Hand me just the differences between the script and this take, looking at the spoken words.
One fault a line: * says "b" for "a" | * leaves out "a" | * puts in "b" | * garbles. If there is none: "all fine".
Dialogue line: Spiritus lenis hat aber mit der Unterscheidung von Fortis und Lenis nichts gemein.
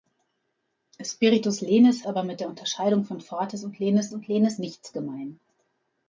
* leaves out "hat"
* puts in "und Lenis"